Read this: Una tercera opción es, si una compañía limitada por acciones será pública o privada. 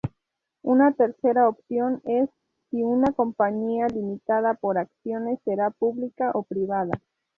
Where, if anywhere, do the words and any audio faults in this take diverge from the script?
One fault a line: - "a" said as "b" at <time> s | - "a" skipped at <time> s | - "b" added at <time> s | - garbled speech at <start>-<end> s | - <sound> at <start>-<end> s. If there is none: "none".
none